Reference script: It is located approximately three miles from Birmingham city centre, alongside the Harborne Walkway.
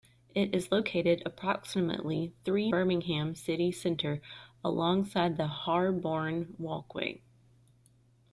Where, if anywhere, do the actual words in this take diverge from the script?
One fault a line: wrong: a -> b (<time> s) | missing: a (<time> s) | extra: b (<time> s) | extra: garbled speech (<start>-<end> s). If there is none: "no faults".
missing: miles from (2.7 s)